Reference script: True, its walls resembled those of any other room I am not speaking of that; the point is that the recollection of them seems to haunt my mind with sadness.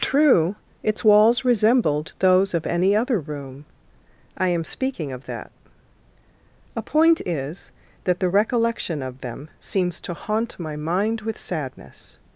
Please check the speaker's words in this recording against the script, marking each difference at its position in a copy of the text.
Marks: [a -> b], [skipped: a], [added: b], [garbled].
True, its walls resembled those of any other room I am [skipped: not] speaking of that; [the -> a] point is that the recollection of them seems to haunt my mind with sadness.